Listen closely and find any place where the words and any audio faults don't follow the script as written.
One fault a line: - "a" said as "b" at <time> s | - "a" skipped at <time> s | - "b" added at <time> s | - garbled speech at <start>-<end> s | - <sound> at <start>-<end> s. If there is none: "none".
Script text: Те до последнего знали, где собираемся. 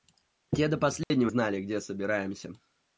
- dropout at 1.0-1.1 s